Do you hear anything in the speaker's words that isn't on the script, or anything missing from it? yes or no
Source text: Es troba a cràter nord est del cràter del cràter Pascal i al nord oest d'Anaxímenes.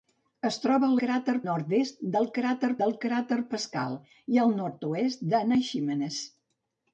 no